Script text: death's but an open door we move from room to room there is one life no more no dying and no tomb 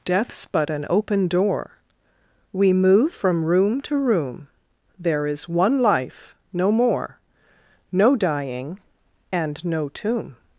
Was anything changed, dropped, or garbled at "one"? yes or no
no